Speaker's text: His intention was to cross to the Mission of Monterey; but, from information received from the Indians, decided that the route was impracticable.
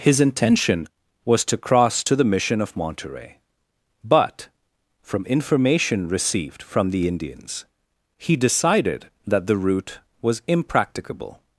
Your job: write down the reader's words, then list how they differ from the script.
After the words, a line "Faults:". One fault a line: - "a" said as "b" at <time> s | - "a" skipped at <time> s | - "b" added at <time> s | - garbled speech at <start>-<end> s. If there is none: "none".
His intention was to cross to the Mission of Monterey; but, from information received from the Indians, he decided that the route was impracticable.
Faults:
- "he" added at 8.2 s